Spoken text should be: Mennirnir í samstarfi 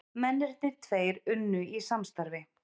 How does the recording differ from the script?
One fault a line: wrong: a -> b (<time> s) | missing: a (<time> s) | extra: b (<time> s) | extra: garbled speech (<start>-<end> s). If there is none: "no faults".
extra: tveir unnu (0.9 s)